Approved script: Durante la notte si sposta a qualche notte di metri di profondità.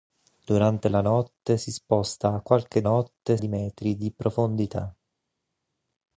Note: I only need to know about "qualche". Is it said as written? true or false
true